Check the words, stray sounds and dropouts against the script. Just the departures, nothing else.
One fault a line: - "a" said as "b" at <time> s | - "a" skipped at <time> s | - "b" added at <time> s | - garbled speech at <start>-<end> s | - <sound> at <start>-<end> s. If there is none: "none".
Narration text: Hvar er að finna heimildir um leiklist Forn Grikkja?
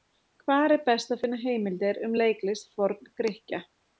- "best" added at 0.9 s